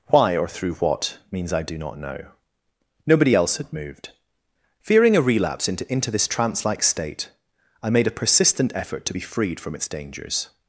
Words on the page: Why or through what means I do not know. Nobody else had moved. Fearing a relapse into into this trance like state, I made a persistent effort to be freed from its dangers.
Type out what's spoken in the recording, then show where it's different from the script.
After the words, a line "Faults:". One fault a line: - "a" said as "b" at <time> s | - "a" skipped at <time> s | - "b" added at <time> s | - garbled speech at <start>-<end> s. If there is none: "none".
Why or through what means I do not know. Nobody else had moved. Fearing a relapse into into this trance like state, I made a persistent effort to be freed from its dangers.
Faults:
none